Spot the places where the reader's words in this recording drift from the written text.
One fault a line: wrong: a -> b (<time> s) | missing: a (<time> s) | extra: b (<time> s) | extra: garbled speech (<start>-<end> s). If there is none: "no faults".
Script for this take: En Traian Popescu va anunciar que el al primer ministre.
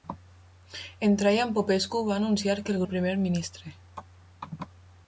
no faults